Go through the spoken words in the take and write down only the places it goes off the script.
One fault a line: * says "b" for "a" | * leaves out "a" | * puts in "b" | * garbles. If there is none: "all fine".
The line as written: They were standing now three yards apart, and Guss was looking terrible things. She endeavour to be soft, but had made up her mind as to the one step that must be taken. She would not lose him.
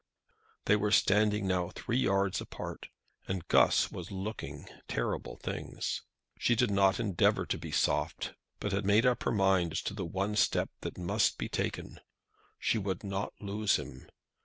* puts in "did not"